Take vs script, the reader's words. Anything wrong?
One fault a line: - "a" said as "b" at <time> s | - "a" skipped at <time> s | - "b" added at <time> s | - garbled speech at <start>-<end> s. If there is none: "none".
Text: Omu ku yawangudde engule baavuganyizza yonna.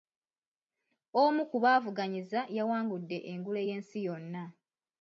- "baavuganyizza" added at 1.6 s
- "baavuganyizza" said as "y'ensi" at 3.7 s